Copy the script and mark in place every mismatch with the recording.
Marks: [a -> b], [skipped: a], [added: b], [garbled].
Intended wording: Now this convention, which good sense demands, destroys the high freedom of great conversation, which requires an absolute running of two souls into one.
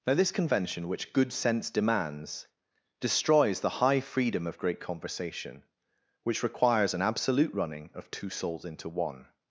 Now this convention, which good sense demands, destroys the high freedom of great conversation, which requires an absolute running of two souls into one.